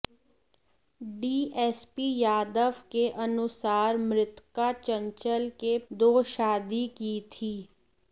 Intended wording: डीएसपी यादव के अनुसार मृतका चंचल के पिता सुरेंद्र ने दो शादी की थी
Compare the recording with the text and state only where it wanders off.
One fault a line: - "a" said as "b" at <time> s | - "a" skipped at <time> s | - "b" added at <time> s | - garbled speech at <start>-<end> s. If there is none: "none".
- "पिता सुरेंद्र ने" skipped at 5.8 s